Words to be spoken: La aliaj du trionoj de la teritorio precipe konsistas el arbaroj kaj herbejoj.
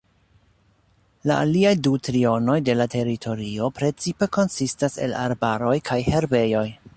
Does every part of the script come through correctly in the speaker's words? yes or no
yes